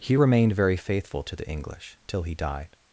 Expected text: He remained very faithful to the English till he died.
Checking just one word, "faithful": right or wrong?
right